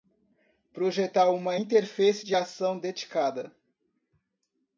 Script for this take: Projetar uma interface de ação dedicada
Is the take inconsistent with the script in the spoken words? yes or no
no